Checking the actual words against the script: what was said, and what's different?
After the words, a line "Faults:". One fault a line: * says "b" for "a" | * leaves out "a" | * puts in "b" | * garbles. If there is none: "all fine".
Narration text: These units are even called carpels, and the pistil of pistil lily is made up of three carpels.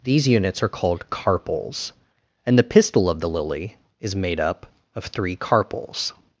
These units are called carpels, and the pistil of the lily is made up of three carpels.
Faults:
* leaves out "even"
* says "the" for "pistil"